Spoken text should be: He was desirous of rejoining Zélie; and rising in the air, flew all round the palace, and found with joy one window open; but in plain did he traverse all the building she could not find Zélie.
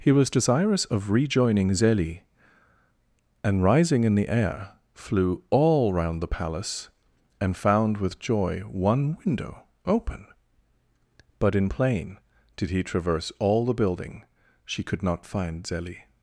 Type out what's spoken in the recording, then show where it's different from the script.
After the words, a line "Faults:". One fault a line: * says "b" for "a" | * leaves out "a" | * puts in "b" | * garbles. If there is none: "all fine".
He was desirous of rejoining Zélie; and rising in the air, flew all round the palace, and found with joy one window open; but in plain did he traverse all the building she could not find Zélie.
Faults:
all fine